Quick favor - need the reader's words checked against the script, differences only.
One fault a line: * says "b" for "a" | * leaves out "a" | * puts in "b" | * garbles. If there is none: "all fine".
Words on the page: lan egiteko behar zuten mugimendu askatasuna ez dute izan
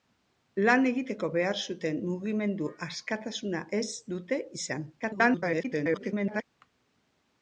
* garbles